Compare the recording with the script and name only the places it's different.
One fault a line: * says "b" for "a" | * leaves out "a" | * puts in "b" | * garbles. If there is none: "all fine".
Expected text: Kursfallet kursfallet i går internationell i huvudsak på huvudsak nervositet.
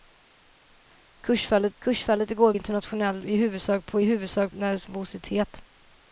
all fine